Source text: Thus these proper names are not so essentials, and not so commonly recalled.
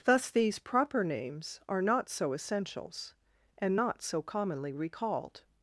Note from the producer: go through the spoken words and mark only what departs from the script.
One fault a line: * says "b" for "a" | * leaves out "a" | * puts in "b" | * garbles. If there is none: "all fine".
all fine